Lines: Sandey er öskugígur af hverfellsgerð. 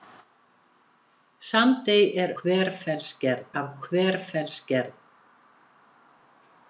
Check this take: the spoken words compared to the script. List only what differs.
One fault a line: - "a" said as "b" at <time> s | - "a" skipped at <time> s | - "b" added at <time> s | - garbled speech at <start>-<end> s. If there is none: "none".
- "öskugígur" said as "hverfellsgerð" at 2.4 s